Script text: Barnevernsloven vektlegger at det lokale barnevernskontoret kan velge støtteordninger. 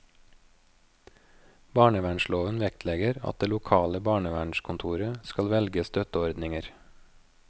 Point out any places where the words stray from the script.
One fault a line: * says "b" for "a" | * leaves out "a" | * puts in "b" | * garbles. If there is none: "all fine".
* says "skal" for "kan"